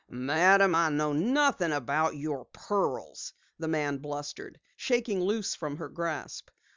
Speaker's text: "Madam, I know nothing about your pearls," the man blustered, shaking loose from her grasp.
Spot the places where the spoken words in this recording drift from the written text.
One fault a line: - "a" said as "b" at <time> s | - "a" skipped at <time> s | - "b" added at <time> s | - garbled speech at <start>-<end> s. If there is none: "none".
none